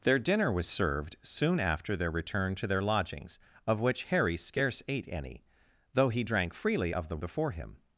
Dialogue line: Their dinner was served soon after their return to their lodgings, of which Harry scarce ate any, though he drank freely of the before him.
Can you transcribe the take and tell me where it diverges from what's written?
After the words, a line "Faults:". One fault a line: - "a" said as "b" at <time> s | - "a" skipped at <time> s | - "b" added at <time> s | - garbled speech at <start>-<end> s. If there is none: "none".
Their dinner was served soon after their return to their lodgings, of which Harry scarce ate any, though he drank freely of the before him.
Faults:
none